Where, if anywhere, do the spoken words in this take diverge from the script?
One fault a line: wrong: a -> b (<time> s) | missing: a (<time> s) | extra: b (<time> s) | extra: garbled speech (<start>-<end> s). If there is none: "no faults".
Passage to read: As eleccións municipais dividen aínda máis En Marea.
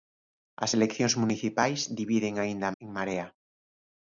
missing: máis (2.7 s)